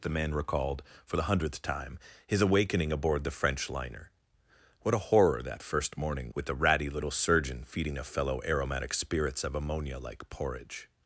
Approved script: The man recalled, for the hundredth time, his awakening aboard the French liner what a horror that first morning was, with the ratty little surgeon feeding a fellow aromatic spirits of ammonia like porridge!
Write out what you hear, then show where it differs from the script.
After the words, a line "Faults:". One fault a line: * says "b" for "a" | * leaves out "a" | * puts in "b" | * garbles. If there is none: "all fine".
The man recalled, for the hundredth time, his awakening aboard the French liner what a horror that first morning with the ratty little surgeon feeding a fellow aromatic spirits of ammonia like porridge!
Faults:
* leaves out "was"